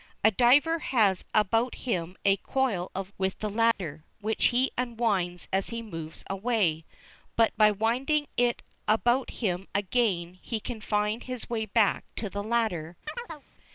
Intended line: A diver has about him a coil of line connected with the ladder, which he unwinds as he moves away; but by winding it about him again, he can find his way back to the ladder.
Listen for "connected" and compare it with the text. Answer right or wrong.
wrong